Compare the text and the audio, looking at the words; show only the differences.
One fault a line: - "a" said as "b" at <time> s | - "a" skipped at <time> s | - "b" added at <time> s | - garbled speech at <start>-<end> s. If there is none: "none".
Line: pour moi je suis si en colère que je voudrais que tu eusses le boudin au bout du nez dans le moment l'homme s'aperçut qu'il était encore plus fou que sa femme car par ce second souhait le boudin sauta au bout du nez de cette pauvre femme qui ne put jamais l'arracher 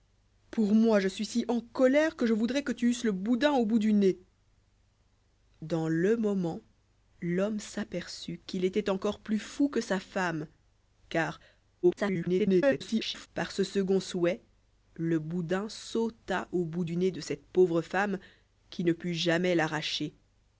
- garbled speech at 11.8-13.3 s